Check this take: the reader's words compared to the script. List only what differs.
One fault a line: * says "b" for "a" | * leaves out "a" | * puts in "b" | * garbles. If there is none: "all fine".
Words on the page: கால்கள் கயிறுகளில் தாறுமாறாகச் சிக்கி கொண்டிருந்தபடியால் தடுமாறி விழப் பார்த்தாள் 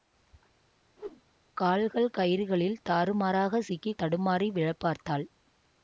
* leaves out "கொண்டிருந்தபடியால்"